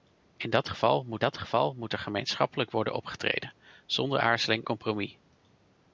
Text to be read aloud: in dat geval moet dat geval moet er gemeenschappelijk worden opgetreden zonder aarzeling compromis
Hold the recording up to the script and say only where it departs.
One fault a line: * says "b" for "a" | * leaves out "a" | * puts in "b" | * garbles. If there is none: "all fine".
all fine